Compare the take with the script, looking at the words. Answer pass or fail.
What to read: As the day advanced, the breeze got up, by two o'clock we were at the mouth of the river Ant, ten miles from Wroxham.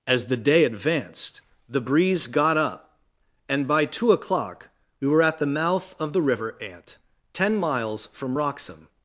fail